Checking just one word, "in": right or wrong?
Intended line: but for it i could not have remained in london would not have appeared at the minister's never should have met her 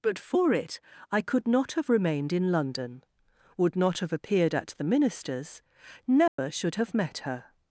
right